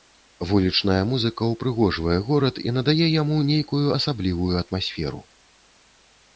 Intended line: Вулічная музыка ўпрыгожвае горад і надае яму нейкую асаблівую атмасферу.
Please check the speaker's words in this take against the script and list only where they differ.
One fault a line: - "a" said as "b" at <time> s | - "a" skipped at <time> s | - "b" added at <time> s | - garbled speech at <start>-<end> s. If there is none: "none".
none